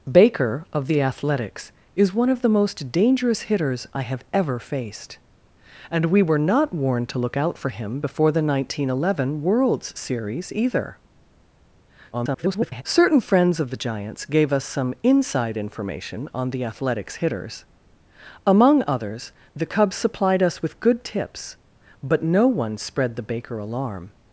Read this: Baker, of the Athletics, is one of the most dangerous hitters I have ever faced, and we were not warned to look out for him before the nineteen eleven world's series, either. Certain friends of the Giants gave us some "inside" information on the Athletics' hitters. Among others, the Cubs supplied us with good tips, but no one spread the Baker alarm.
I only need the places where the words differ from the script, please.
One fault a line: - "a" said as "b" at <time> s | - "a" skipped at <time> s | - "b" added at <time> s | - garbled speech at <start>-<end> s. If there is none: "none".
- garbled speech at 12.1-12.8 s